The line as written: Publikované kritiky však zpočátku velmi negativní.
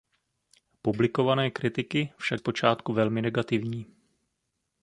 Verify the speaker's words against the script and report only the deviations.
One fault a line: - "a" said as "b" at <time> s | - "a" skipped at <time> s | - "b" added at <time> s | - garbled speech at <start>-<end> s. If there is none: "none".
none